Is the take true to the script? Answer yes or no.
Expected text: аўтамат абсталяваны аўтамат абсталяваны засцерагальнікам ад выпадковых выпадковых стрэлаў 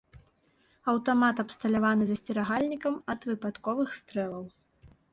no